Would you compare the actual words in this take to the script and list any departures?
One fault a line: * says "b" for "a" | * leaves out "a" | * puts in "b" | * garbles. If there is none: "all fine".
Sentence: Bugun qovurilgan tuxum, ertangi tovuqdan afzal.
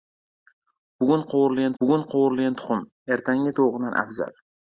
* puts in "bugun qovurilgan"